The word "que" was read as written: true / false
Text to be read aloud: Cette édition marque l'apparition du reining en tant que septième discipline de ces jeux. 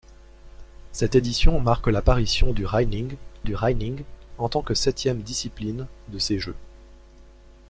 true